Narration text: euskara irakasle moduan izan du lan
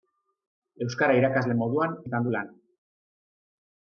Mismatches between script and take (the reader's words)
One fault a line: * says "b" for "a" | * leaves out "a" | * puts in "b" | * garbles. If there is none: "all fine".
all fine